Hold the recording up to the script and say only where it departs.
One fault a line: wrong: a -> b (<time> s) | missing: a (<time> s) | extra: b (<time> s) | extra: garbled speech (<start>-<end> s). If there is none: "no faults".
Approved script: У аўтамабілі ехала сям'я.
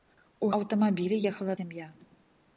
no faults